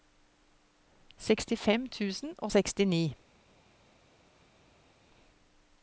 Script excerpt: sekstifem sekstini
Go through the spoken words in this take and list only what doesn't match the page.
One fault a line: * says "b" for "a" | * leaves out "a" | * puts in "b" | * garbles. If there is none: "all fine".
* puts in "tusen og"